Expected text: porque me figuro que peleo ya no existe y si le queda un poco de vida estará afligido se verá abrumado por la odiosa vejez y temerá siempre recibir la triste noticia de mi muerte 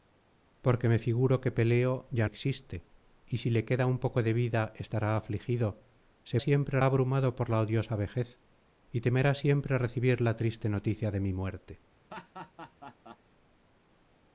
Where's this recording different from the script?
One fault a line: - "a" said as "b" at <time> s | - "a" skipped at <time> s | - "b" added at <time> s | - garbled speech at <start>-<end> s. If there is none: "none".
- "no" skipped at 2.3 s
- "verá" said as "siempre" at 6.4 s